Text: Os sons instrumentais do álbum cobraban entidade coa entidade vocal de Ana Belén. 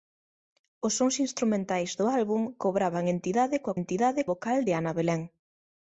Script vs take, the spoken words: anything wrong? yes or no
no